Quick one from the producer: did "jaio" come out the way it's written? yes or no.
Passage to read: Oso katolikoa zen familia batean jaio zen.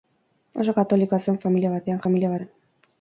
no